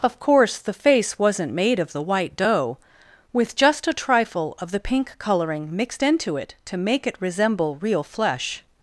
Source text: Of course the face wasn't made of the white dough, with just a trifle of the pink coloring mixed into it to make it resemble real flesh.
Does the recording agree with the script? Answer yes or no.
yes